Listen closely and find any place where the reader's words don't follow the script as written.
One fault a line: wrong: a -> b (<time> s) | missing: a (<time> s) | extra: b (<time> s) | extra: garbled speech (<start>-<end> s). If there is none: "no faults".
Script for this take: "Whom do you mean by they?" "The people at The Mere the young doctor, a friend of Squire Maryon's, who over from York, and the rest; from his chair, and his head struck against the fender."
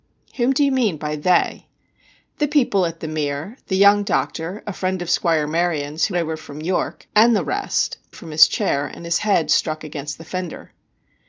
no faults